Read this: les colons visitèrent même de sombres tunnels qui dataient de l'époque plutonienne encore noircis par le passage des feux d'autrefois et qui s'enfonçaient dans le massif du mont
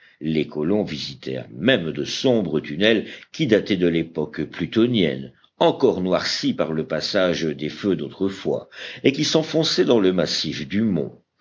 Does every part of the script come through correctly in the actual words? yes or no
yes